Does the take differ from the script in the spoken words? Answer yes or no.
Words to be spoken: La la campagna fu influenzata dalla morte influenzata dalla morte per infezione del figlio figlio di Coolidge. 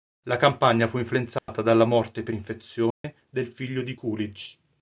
yes